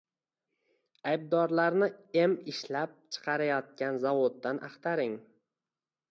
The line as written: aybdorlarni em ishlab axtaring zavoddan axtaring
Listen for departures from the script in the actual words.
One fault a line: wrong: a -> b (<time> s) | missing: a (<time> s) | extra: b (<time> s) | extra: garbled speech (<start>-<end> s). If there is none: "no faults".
wrong: axtaring -> chiqarayotgan (3.2 s)